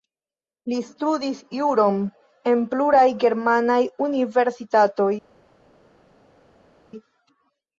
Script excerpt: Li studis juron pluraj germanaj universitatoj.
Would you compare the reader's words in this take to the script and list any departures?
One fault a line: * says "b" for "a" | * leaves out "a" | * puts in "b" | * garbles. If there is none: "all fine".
* puts in "en"